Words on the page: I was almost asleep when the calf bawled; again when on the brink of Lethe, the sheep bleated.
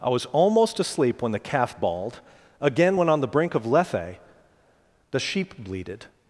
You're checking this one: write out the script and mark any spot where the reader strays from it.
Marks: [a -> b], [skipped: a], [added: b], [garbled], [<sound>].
I was almost asleep when the calf bawled; again when on the brink of Lethe, the sheep bleated.